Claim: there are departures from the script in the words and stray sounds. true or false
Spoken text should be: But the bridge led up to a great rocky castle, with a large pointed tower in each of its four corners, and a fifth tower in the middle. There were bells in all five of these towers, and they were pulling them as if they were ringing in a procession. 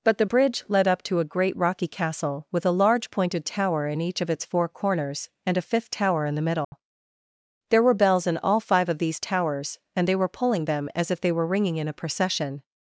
true